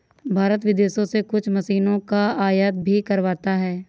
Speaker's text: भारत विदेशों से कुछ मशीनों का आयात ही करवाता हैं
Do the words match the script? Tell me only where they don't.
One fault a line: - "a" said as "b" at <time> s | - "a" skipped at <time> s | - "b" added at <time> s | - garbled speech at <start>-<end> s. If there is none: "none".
- "ही" said as "भी" at 2.8 s